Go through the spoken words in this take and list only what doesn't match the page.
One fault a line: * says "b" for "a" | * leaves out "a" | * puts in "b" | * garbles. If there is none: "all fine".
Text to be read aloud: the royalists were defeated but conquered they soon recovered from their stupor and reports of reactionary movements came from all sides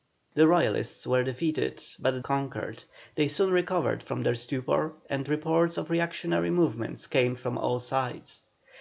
all fine